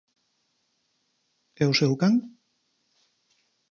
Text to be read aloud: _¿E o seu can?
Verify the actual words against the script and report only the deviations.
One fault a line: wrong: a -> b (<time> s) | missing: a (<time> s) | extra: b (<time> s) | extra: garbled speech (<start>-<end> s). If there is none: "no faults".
no faults